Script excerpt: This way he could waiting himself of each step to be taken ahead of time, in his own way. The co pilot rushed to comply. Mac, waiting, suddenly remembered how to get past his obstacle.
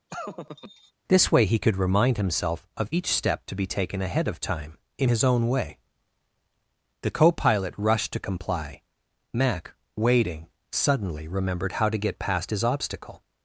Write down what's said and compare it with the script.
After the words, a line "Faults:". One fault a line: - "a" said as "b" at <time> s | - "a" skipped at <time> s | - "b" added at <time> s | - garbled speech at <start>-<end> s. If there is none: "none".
This way he could remind himself of each step to be taken ahead of time, in his own way. The co pilot rushed to comply. Mac, waiting, suddenly remembered how to get past his obstacle.
Faults:
- "waiting" said as "remind" at 1.8 s